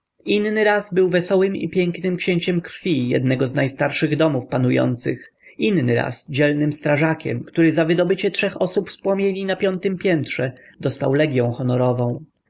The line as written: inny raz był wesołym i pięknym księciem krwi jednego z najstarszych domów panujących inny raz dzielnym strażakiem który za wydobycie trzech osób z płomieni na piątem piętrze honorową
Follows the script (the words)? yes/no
no